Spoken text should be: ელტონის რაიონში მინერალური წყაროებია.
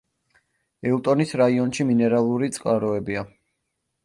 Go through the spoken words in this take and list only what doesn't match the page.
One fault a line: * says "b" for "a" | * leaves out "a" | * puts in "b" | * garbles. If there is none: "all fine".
all fine